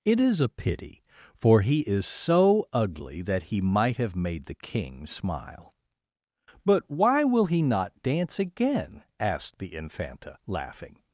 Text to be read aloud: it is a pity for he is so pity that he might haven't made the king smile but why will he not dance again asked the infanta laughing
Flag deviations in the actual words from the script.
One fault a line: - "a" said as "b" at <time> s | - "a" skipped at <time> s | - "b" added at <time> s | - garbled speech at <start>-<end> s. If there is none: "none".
- "pity" said as "ugly" at 2.7 s
- "haven't" said as "have" at 4.0 s